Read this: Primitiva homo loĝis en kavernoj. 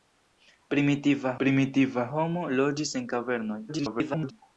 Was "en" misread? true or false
false